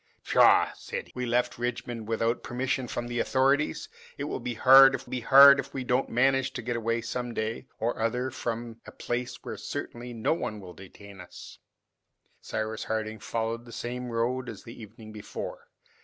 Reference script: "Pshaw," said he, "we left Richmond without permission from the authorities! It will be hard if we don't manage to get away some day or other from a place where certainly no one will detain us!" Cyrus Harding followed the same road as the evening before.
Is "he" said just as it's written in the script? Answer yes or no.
no